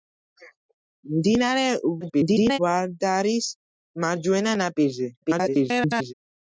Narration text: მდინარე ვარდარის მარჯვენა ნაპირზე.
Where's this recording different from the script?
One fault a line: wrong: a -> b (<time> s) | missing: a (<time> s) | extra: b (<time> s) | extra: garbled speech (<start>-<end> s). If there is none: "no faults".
extra: garbled speech (2.0-2.6 s)
extra: garbled speech (5.2-6.1 s)